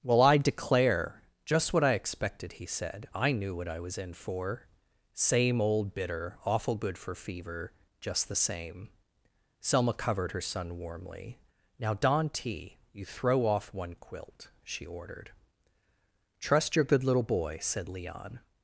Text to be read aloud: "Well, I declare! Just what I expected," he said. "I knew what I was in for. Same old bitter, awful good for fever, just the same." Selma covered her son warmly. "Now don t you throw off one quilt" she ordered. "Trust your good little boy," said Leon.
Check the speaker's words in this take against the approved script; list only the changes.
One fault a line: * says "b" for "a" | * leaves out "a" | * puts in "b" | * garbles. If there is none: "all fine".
all fine